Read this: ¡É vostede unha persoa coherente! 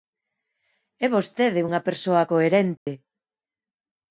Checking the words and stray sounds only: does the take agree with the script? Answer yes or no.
no